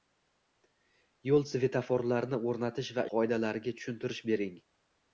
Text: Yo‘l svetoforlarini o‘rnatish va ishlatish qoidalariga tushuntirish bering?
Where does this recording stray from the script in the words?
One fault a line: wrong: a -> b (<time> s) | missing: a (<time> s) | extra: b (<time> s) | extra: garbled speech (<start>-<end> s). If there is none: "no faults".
missing: ishlatish (3.0 s)